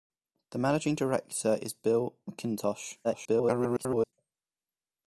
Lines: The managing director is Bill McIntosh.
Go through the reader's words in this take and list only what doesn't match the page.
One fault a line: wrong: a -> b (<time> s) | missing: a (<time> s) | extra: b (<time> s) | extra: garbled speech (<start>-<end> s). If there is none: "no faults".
extra: garbled speech (3.0-4.1 s)